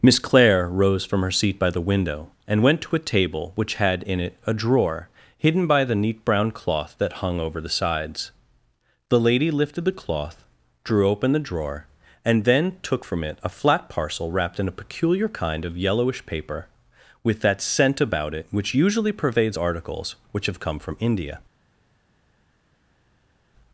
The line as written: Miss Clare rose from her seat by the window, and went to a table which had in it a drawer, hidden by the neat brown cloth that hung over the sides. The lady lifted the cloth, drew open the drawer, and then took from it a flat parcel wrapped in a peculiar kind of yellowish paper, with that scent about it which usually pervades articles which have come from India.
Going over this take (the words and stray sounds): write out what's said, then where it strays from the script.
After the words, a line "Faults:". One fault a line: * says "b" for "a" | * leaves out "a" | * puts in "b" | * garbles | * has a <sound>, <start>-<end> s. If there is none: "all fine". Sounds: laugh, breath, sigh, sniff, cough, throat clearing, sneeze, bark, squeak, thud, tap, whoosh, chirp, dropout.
Miss Clare rose from her seat by the window, and went to a table which had in it a drawer, hidden by the neat brown cloth that hung over the sides. The lady lifted the cloth, drew open the drawer, and then took from it a flat parcel wrapped in a peculiar kind of yellowish paper, with that scent about it which usually pervades articles which have come from India.
Faults:
all fine